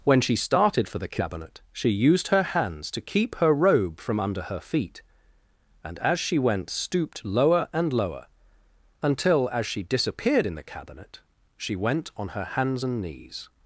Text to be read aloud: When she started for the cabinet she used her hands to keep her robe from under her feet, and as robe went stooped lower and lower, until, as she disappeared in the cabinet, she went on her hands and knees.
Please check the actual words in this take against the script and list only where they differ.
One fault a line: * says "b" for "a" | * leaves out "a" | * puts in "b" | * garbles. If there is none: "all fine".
* says "she" for "robe"